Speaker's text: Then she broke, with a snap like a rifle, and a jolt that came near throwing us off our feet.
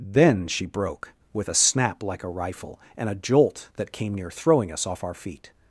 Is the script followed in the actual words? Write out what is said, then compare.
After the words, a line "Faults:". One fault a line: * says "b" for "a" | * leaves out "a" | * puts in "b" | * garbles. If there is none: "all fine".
Then she broke, with a snap like a rifle, and a jolt that came near throwing us off our feet.
Faults:
all fine